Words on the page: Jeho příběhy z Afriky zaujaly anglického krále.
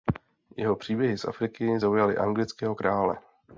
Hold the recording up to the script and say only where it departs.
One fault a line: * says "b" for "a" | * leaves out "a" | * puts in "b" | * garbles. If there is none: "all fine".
all fine